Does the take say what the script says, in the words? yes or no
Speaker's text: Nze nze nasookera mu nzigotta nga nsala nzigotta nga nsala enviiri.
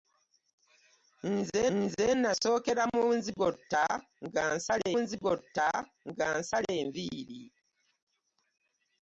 yes